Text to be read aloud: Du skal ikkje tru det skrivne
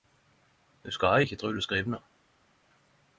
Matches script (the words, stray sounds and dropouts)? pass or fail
pass